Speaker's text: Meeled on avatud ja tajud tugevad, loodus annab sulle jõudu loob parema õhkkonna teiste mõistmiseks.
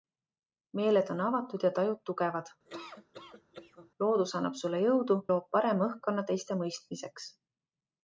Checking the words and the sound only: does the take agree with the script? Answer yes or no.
no